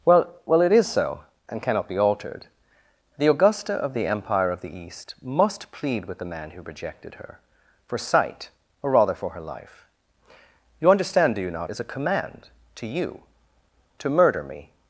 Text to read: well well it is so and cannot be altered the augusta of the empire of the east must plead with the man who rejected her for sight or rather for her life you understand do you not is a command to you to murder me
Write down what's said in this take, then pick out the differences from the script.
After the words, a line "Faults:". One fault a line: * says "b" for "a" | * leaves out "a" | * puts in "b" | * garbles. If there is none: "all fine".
well well it is so and cannot be altered the augusta of the empire of the east must plead with the man who rejected her for sight or rather for her life you understand do you not is a command to you to murder me
Faults:
all fine